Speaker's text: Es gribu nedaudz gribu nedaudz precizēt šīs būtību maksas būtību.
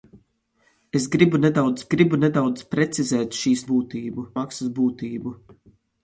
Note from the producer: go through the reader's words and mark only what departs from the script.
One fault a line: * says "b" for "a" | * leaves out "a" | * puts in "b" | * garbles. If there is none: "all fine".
all fine